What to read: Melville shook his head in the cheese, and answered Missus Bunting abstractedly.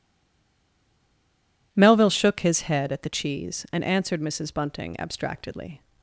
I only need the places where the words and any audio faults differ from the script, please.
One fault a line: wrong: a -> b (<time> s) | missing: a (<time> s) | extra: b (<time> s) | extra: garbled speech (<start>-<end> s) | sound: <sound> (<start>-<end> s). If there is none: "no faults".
wrong: in -> at (2.9 s)